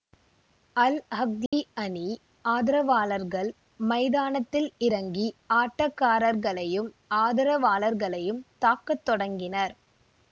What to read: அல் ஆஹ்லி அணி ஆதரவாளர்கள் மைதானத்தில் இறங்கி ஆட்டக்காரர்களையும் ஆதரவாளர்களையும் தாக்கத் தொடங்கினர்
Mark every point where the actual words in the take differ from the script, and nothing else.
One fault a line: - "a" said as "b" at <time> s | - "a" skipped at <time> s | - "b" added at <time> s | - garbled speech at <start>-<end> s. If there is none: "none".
none